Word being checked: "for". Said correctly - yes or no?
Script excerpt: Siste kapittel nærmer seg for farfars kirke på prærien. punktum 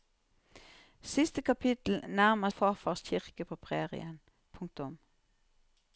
no